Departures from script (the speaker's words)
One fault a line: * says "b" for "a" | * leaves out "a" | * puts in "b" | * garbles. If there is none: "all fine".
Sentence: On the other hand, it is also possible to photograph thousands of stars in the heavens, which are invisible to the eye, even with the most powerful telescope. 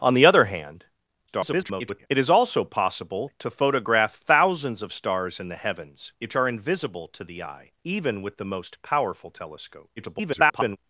* garbles
* garbles